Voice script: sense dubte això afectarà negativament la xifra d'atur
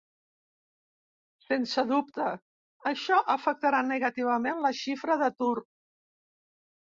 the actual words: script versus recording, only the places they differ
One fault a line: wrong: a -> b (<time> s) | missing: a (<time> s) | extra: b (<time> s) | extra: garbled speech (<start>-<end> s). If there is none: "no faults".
no faults